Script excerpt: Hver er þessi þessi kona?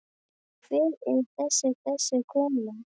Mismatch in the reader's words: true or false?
false